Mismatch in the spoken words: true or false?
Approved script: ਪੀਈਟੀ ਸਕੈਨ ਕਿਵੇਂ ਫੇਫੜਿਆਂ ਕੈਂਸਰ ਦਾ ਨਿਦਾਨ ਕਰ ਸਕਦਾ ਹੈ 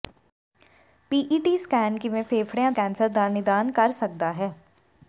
false